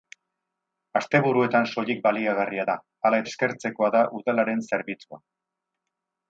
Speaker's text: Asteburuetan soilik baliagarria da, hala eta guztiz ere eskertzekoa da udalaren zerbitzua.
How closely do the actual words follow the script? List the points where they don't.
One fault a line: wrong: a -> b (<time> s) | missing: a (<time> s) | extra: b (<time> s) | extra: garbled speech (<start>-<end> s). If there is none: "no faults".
missing: eta guztiz ere (3.2 s)